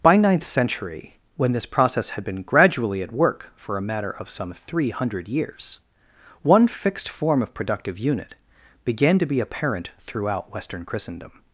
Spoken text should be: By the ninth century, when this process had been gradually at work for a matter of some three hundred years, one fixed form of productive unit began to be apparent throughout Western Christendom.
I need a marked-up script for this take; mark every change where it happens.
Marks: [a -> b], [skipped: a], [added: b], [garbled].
By [skipped: the] ninth century, when this process had been gradually at work for a matter of some three hundred years, one fixed form of productive unit began to be apparent throughout Western Christendom.